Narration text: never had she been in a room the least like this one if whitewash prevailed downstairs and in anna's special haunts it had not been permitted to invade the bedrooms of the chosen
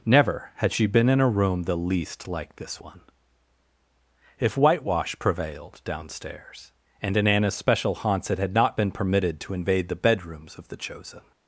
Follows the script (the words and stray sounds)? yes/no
yes